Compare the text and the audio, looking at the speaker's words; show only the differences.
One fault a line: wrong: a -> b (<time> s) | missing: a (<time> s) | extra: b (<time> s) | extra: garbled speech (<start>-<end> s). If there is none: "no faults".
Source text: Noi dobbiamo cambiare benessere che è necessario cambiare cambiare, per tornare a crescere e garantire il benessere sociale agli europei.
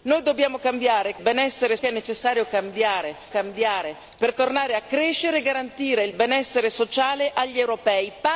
no faults